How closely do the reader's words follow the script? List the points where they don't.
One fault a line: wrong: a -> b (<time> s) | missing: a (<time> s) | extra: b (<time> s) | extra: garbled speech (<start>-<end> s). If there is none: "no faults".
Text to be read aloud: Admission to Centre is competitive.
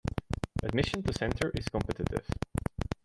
no faults